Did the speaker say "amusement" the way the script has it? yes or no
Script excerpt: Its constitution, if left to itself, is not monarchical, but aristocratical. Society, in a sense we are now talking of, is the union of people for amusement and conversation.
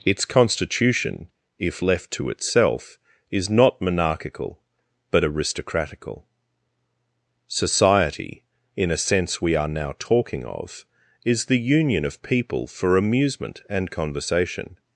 yes